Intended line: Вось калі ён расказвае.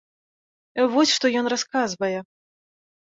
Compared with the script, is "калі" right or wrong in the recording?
wrong